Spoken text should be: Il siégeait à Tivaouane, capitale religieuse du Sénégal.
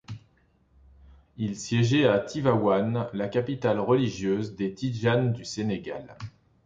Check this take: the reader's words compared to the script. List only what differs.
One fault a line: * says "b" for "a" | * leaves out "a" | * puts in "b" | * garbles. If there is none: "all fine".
* puts in "la"
* puts in "des Tidjanes"